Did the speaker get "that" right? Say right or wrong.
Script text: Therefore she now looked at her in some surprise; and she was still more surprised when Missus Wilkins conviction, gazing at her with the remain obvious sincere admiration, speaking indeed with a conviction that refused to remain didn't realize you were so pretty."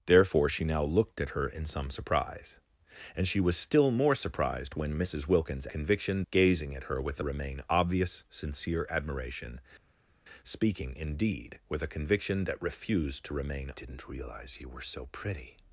right